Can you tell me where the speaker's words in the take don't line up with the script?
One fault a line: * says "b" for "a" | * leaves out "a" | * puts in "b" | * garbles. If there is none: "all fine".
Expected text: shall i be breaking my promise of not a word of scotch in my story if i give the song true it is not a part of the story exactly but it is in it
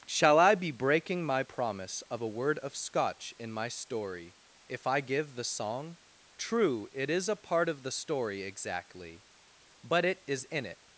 * leaves out "not"
* leaves out "not"